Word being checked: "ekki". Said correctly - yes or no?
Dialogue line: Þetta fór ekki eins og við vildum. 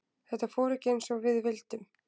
yes